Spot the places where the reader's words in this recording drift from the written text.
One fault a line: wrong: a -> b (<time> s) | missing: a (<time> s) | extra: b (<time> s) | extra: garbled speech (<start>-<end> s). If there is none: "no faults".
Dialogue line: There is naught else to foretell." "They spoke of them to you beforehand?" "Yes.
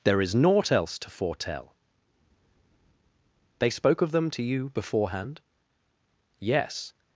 no faults